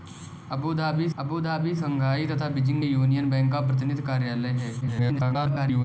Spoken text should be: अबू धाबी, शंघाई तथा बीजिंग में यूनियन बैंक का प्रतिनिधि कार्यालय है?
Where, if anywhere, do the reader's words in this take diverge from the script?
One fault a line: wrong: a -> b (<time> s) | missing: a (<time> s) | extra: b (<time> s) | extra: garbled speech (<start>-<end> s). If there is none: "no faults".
extra: अबू धाबी (1.2 s)
missing: में (2.8 s)
extra: garbled speech (4.8-5.8 s)